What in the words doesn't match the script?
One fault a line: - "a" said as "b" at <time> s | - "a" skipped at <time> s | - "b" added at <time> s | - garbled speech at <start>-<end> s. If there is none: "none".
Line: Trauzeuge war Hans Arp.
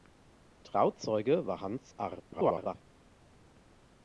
- garbled speech at 2.3-2.8 s